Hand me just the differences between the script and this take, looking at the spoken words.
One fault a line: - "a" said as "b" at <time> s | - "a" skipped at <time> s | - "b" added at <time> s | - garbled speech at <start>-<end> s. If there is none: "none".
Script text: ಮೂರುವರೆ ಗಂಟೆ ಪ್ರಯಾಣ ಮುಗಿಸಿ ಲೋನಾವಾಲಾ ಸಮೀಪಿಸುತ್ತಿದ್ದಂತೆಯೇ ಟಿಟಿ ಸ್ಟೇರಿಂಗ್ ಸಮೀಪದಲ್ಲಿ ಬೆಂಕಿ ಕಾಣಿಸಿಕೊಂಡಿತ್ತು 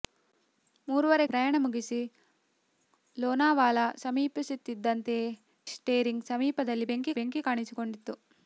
- "ಗಂಟೆ" skipped at 1.2 s
- "ಟಿಟಿ" skipped at 5.3 s
- "ಬೆಂಕಿ" added at 7.2 s